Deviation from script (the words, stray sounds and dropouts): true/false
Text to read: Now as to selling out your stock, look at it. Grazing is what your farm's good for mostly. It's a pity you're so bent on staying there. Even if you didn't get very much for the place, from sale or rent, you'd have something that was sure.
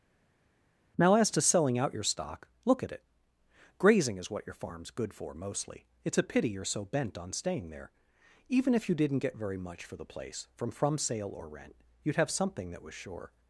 true